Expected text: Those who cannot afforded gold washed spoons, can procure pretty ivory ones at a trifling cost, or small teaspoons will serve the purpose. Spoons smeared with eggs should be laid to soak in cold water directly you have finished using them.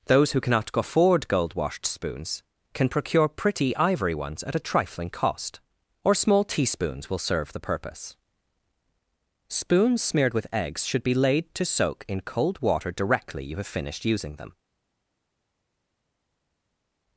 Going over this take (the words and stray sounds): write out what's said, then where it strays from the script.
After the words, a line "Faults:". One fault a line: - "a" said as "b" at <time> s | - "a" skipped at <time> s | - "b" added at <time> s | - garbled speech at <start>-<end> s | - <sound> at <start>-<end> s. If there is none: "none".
Those who cannot afford gold washed spoons, can procure pretty ivory ones at a trifling cost, or small teaspoons will serve the purpose. Spoons smeared with eggs should be laid to soak in cold water directly you have finished using them.
Faults:
- "afforded" said as "afford" at 0.7 s